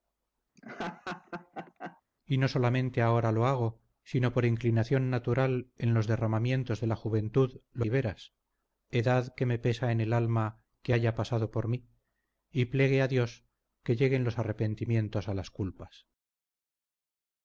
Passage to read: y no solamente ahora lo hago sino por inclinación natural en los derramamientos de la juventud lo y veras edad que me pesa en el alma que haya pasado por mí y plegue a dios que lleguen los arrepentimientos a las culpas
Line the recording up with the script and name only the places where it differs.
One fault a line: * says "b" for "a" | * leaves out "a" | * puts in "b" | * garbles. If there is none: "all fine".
all fine